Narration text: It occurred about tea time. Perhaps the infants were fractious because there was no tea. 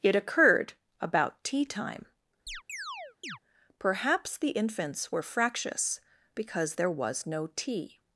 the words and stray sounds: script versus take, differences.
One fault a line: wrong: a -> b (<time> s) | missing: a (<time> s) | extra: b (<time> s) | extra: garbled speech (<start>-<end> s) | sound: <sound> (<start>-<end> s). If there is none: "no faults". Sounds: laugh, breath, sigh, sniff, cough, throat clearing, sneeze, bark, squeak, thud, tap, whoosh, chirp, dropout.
sound: chirp (2.5-3.4 s)